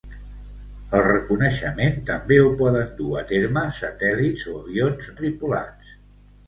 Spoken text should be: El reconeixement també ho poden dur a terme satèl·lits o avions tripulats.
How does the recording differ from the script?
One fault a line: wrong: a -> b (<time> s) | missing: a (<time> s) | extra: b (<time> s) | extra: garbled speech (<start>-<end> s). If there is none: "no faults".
no faults